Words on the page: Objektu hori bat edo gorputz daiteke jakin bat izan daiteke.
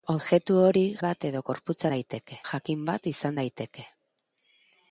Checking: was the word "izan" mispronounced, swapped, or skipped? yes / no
no